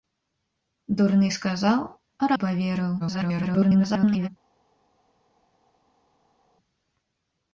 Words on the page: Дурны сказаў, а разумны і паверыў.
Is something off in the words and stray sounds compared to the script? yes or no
yes